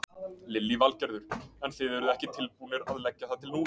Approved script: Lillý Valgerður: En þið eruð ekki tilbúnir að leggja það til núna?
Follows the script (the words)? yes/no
yes